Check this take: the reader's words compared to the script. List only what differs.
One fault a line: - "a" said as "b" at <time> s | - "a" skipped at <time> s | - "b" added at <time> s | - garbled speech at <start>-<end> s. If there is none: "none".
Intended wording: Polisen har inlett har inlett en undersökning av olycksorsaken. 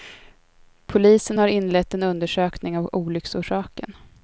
- "har inlett" skipped at 1.9 s